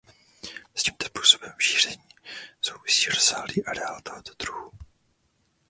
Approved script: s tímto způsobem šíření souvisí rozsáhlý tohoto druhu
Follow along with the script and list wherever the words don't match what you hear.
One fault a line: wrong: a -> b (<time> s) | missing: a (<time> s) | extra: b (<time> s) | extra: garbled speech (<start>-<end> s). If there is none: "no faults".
extra: areál (3.7 s)